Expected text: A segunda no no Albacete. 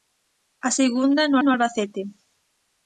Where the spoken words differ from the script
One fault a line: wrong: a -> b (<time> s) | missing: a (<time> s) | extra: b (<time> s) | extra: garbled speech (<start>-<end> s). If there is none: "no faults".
no faults